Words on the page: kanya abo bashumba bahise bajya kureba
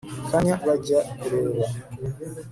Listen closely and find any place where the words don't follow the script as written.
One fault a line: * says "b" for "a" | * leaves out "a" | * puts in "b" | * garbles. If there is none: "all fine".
* leaves out "abo bashumba bahise"